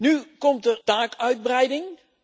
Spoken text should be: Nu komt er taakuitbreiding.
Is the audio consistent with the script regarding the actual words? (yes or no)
yes